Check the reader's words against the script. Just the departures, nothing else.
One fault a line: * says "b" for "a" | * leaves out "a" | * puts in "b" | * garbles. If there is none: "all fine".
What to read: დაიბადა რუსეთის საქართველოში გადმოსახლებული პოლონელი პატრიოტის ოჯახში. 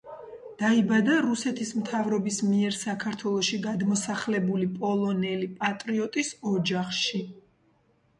* puts in "მთავრობის მიერ"